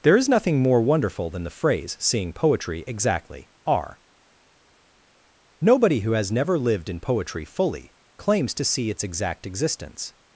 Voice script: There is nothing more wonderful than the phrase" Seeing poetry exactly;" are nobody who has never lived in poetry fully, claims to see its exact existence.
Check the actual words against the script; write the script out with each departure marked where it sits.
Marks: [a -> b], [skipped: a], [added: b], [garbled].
There is nothing more wonderful than the phrase" Seeing poetry exactly;" are nobody who has never lived in poetry fully, claims to see its exact existence.